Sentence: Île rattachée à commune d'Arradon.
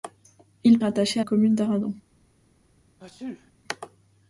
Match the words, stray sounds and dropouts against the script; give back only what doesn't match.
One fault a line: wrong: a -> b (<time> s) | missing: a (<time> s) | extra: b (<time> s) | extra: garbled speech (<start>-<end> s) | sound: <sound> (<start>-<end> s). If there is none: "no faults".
sound: sneeze (3.0-3.5 s)